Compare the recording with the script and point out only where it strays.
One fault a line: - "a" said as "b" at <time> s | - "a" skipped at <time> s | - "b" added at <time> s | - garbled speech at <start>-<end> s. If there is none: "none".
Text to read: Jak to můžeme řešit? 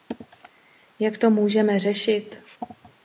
none